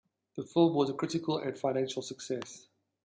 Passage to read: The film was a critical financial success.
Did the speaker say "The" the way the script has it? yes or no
yes